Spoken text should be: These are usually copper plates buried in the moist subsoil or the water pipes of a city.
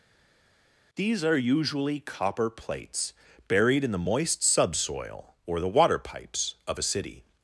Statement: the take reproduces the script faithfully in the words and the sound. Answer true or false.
true